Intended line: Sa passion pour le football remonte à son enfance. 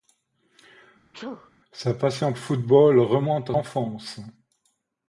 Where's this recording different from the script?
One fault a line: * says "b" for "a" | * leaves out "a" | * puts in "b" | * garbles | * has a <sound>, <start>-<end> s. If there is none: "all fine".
* has a sneeze, 1.1-1.5 s
* leaves out "pour"
* leaves out "son"